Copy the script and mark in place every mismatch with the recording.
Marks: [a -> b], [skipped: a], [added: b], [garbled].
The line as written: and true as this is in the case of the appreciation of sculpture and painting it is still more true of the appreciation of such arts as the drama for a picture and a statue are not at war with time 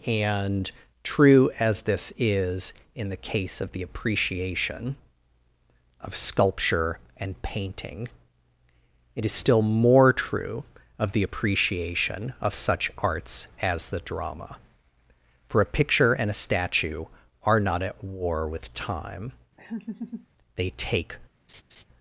and true as this is in the case of the appreciation of sculpture and painting it is still more true of the appreciation of such arts as the drama for a picture and a statue are not at war with time [added: they take]